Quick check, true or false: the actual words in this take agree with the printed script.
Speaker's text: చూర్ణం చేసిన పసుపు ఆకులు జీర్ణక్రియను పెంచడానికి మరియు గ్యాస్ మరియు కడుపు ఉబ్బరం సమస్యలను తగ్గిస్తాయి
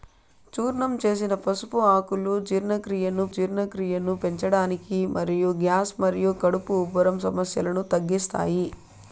false